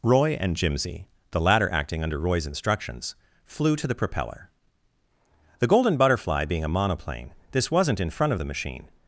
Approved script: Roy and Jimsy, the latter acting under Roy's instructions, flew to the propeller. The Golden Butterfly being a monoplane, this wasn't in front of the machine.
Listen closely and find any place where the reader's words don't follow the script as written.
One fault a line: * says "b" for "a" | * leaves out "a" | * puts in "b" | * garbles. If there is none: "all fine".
all fine